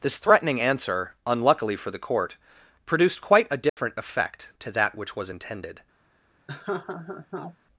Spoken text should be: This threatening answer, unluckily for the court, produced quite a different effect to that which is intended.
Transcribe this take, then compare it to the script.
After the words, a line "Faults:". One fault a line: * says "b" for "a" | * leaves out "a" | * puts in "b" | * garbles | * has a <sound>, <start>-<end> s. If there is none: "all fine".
This threatening answer, unluckily for the court, produced quite a different effect to that which was intended.
Faults:
* has a dropout, 3.7-3.8 s
* says "was" for "is"
* has a laugh, 6.5-7.6 s